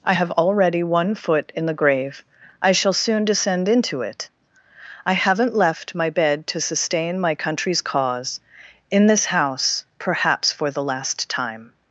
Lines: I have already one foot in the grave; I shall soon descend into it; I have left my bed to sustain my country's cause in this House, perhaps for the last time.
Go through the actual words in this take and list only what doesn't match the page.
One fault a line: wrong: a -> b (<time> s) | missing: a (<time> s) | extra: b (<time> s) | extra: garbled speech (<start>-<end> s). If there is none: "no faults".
wrong: have -> haven't (5.1 s)